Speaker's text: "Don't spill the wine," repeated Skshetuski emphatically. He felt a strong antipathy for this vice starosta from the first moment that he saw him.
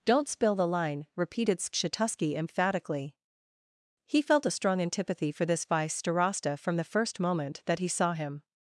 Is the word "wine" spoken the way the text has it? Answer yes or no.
no